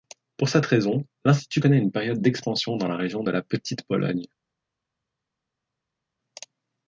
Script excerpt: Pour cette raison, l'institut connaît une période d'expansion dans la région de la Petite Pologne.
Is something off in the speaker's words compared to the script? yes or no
no